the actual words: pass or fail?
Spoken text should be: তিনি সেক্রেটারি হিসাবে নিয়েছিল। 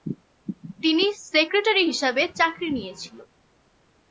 fail